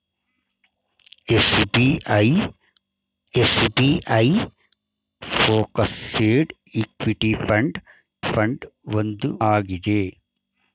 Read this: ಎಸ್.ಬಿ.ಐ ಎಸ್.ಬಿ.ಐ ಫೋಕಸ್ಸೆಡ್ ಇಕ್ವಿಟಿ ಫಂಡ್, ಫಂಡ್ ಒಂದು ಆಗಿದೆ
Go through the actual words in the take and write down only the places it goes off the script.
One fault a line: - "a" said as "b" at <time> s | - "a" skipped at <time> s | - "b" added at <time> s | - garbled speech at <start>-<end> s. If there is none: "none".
none